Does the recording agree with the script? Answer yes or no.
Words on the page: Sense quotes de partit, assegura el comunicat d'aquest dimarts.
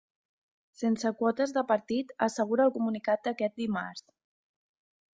yes